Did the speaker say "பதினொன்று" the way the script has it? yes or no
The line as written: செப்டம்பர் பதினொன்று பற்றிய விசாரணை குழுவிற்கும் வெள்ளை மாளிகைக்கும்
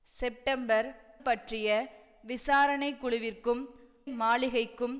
no